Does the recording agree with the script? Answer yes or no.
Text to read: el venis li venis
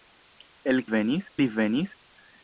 yes